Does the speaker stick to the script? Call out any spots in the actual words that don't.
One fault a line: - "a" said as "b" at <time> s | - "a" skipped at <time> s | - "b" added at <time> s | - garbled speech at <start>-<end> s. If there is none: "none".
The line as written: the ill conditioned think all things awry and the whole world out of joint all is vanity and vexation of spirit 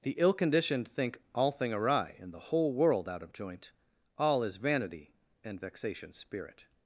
- "things" said as "thing" at 1.5 s
- "of" skipped at 6.1 s